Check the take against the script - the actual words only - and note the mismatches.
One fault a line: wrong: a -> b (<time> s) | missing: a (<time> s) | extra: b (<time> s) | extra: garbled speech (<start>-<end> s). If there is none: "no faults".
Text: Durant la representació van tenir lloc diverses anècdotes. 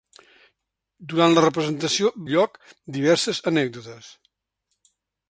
missing: van tenir (2.1 s)